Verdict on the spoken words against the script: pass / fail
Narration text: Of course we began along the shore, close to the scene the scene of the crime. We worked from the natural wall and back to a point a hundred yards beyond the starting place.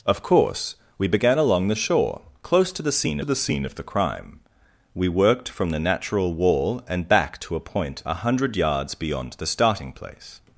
pass